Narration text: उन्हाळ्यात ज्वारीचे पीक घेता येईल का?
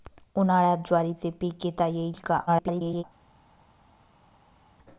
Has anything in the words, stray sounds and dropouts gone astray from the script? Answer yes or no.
yes